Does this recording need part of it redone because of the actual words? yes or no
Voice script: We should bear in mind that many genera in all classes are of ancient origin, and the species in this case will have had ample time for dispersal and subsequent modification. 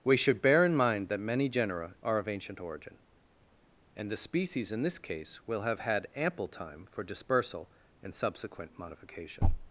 yes